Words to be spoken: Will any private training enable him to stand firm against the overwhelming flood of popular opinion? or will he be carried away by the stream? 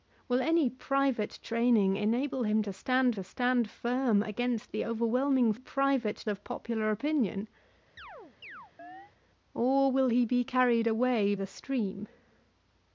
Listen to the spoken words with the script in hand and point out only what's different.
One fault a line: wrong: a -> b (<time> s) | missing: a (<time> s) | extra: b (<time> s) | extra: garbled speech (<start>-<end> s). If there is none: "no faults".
extra: to stand (3.1 s)
wrong: flood -> private (5.5 s)
missing: by (11.3 s)